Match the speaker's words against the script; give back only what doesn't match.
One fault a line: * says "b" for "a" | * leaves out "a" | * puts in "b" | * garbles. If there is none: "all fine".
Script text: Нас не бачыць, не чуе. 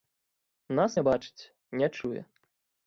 all fine